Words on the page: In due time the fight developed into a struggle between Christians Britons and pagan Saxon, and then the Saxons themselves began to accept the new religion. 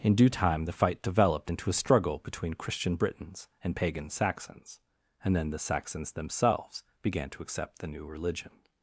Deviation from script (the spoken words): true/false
true